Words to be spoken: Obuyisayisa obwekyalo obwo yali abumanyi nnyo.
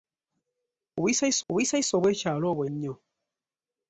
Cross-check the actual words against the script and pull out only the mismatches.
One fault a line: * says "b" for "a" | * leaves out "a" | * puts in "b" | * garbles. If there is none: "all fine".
* puts in "obuyisayisa"
* leaves out "yali abumanyi"